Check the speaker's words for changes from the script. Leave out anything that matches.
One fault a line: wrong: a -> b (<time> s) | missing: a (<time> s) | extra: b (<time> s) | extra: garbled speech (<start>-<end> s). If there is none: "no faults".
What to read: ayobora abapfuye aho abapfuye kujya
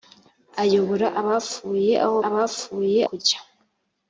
no faults